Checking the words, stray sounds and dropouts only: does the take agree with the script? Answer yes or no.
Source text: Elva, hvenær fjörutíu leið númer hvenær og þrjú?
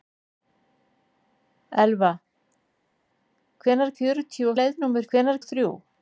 yes